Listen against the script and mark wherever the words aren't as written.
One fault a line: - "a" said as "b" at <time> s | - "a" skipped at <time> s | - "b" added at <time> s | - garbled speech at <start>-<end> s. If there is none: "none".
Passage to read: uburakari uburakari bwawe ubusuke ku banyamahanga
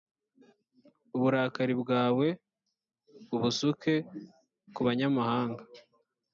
- "uburakari" skipped at 1.7 s